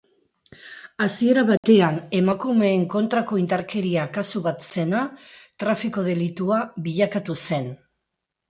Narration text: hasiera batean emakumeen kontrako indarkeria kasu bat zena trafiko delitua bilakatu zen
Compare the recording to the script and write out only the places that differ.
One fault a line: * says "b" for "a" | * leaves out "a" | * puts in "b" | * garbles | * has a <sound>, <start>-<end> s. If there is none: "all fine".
* has a dropout, 1.6-1.6 s